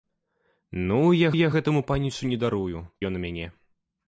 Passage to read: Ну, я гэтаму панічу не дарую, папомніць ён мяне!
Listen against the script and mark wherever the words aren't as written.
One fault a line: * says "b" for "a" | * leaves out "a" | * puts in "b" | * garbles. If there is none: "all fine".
* puts in "я"
* leaves out "папомніць"